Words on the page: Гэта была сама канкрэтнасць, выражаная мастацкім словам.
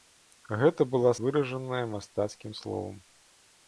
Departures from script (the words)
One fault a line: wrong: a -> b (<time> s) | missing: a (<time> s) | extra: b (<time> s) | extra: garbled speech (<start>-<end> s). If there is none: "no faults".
missing: сама канкрэтнасць (1.1 s)